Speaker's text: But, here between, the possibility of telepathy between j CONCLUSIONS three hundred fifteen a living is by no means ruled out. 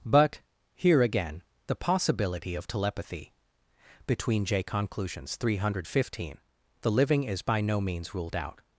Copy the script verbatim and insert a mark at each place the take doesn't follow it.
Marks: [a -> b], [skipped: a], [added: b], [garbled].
But, here [between, -> again] the possibility of telepathy between j CONCLUSIONS three hundred fifteen [a -> the] living is by no means ruled out.